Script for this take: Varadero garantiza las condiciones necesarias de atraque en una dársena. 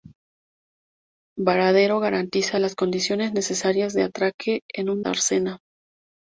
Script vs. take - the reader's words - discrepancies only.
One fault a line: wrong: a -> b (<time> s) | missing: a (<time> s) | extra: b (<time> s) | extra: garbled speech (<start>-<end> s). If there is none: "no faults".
no faults